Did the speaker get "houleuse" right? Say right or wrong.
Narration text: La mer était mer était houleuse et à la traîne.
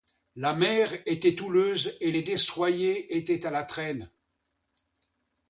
wrong